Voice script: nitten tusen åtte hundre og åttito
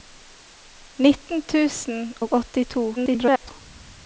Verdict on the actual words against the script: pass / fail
fail